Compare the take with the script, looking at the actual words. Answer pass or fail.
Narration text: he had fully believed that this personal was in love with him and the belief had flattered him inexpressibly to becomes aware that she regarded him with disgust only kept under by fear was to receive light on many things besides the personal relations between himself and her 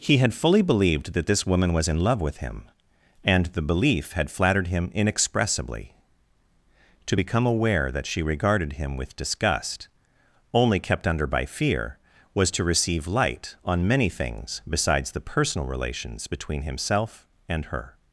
fail